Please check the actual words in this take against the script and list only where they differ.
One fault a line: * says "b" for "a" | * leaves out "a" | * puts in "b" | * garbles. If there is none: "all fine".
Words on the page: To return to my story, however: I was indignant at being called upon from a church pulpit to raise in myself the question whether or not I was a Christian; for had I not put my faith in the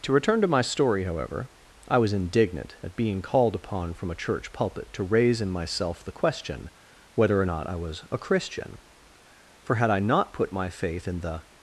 all fine